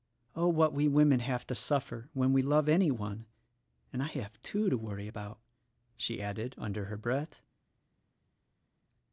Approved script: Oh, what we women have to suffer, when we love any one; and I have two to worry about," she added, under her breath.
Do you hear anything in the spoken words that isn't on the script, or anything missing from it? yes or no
no